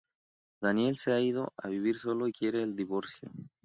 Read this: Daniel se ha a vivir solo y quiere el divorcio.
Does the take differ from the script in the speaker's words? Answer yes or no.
yes